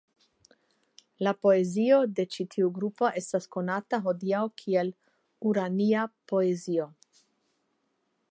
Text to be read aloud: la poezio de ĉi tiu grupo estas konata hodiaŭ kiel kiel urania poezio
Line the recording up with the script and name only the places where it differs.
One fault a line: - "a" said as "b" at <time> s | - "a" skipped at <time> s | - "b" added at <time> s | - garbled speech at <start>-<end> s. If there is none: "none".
- "kiel" skipped at 4.9 s